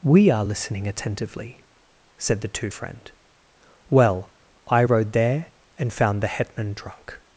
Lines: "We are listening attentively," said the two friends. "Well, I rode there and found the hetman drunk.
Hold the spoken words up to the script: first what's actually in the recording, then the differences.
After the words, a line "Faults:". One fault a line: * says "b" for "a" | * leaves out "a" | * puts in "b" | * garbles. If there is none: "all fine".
"We are listening attentively," said the two friend. "Well, I rode there and found the hetman drunk.
Faults:
* says "friend" for "friends"